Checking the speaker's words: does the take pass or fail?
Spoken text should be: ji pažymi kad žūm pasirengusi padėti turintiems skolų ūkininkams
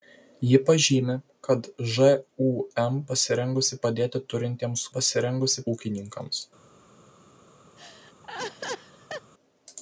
fail